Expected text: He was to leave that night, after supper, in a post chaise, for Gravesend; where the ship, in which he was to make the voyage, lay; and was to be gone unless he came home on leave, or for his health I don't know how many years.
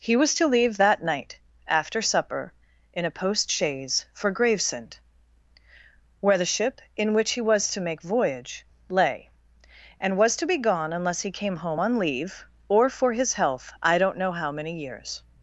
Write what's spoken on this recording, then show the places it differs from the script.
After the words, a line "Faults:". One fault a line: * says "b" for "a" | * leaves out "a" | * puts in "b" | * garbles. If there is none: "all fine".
He was to leave that night, after supper, in a post chaise, for Gravesend; where the ship, in which he was to make voyage, lay; and was to be gone unless he came home on leave, or for his health I don't know how many years.
Faults:
* leaves out "the"